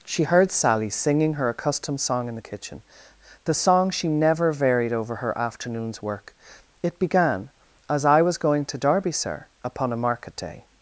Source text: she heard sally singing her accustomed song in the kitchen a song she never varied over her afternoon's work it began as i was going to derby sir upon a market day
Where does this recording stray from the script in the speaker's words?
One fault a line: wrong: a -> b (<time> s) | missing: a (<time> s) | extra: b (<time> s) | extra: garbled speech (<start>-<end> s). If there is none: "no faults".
wrong: a -> the (3.4 s)